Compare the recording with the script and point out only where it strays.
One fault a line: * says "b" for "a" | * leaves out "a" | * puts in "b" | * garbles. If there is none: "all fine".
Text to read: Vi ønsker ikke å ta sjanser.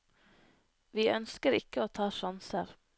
all fine